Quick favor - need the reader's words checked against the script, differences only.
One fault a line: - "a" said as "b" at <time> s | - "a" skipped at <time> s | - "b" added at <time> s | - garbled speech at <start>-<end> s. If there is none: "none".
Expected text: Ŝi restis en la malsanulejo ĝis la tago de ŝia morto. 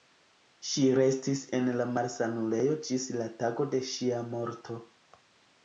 none